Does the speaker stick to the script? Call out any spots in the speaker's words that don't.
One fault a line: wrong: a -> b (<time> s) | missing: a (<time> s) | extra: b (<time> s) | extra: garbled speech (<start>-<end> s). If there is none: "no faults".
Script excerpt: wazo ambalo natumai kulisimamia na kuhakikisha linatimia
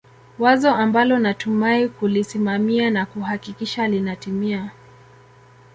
no faults